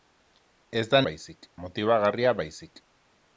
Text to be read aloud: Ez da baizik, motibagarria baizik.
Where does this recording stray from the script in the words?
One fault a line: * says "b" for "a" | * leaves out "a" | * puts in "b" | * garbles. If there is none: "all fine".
all fine